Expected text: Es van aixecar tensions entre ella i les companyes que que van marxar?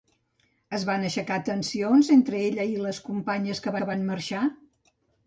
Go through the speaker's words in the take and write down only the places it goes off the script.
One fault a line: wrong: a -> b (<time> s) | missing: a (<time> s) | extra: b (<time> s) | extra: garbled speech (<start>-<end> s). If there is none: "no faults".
no faults